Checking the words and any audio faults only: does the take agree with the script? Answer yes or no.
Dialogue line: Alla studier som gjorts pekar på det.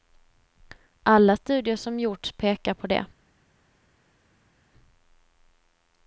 yes